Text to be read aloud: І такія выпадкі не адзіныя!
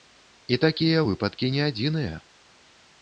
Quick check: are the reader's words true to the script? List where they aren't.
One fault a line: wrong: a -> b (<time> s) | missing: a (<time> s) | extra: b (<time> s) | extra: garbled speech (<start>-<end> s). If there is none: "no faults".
no faults